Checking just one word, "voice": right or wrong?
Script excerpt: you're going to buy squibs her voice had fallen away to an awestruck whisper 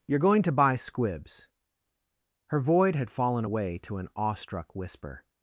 wrong